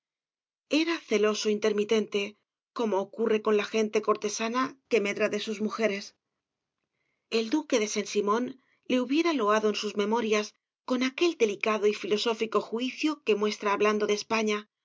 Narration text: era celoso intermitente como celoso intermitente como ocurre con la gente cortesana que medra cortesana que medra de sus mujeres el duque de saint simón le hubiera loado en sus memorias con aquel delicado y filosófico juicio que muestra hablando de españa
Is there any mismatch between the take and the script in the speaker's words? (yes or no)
yes